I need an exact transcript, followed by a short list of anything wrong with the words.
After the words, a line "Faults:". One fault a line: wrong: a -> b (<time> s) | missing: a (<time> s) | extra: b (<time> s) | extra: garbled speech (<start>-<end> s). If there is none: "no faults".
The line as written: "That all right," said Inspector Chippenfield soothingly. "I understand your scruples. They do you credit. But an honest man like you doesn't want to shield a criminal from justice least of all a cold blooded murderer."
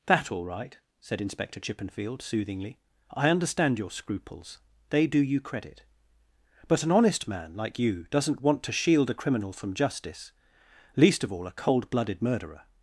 "That all right," said Inspector Chippenfield soothingly. "I understand your scruples. They do you credit. But an honest man like you doesn't want to shield a criminal from justice least of all a cold blooded murderer."
Faults:
no faults